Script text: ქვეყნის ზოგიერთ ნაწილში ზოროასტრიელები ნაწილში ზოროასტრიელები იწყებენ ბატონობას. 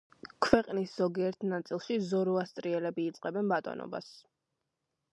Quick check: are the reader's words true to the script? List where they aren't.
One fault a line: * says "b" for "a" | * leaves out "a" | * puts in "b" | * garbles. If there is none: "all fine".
* leaves out "ნაწილში ზოროასტრიელები"